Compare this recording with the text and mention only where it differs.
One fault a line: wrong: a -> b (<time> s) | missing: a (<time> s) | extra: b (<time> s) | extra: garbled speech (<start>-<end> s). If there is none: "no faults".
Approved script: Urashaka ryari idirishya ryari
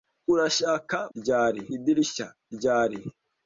no faults